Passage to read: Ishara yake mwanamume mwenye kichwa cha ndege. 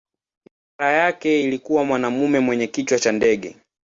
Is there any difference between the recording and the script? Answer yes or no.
yes